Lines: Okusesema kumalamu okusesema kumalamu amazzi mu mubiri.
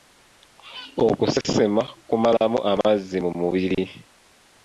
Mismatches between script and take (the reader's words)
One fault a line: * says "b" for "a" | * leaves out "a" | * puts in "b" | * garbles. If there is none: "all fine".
* leaves out "okusesema kumalamu"